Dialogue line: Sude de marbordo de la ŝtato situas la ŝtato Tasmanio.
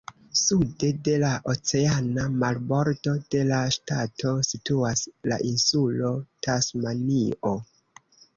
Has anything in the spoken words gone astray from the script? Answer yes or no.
yes